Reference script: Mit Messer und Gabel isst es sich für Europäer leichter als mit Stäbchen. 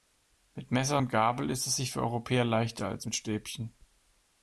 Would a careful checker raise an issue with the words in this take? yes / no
no